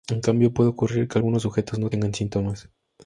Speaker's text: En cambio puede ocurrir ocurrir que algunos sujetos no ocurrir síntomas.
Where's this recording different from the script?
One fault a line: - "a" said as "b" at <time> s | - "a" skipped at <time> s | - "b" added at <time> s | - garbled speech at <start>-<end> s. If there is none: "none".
- "ocurrir" skipped at 1.1 s
- "ocurrir" said as "tengan" at 1.9 s